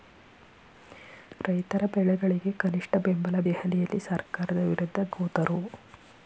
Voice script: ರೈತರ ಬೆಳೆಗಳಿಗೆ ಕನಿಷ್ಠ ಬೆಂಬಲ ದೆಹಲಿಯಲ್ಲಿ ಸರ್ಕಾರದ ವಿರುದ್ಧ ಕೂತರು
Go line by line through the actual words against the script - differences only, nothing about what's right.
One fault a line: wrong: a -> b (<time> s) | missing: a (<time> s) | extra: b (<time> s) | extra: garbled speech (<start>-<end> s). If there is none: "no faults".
no faults